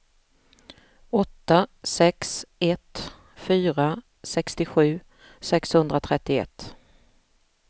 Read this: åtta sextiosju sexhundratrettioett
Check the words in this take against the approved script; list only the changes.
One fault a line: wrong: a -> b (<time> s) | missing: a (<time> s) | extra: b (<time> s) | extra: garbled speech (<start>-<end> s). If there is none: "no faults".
extra: sex ett fyra (1.8 s)